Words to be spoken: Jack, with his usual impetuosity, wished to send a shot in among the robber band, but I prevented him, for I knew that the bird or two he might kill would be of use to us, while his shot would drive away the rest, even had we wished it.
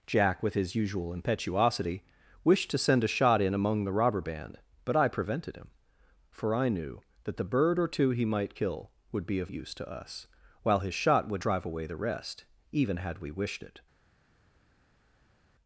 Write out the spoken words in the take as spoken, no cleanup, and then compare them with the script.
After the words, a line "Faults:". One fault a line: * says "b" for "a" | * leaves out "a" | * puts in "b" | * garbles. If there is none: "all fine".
Jack, with his usual impetuosity, wished to send a shot in among the robber band, but I prevented him, for I knew that the bird or two he might kill would be of use to us, while his shot would drive away the rest, even had we wished it.
Faults:
all fine